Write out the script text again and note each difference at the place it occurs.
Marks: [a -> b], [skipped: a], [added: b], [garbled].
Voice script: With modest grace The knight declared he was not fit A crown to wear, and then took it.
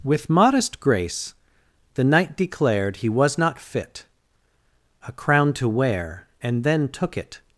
With modest grace The knight declared he was not fit A crown to wear, and then took it.